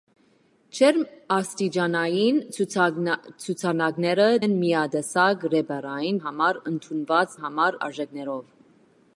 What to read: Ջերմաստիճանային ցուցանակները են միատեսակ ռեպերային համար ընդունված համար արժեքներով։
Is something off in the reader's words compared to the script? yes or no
no